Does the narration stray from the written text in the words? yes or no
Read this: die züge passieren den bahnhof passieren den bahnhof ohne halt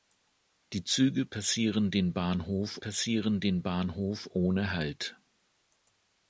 no